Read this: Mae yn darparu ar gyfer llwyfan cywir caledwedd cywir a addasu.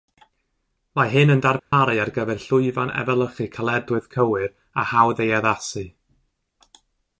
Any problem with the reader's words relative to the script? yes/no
yes